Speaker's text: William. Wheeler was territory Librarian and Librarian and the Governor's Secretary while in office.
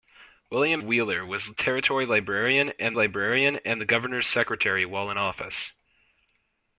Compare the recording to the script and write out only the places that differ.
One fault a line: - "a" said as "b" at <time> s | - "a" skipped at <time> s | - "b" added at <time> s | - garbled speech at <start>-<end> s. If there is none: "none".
none